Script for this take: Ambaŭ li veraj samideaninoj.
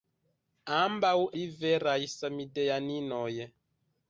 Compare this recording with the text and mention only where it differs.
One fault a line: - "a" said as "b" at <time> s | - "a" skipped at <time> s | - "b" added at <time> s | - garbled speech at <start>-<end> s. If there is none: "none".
none